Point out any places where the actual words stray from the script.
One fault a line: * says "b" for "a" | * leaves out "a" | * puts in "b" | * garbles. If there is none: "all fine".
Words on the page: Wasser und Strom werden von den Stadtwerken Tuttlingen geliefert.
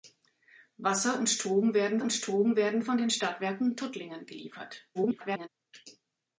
* puts in "und Strom werden"
* garbles